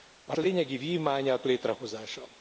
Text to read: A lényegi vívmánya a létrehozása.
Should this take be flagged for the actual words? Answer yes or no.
no